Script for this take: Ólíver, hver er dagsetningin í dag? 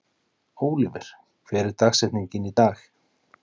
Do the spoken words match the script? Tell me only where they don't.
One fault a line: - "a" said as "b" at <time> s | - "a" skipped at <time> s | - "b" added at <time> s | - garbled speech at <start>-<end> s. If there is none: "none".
none